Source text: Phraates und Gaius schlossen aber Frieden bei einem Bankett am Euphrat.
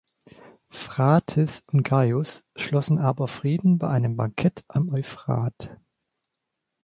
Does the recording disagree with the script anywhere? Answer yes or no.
no